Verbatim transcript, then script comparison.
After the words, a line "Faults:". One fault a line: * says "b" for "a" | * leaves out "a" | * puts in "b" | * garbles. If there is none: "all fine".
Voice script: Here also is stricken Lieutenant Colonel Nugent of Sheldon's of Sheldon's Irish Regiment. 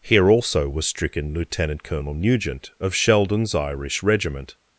Here also was stricken Lieutenant Colonel Nugent of Sheldon's Irish Regiment.
Faults:
* says "was" for "is"
* leaves out "of Sheldon's"